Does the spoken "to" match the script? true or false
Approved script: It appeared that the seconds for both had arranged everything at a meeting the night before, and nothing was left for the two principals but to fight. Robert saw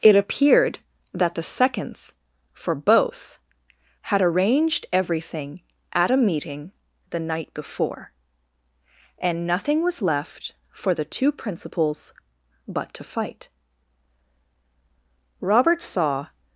true